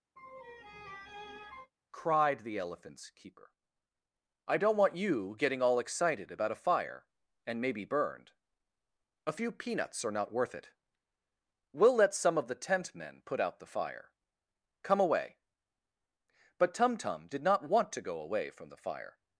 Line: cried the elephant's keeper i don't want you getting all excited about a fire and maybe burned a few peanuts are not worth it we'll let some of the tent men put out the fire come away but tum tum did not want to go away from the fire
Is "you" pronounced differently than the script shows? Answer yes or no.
no